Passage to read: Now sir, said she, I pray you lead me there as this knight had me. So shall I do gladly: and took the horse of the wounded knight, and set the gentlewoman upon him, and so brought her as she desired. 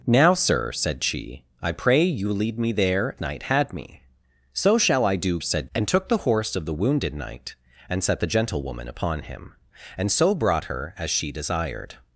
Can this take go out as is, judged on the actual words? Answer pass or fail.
fail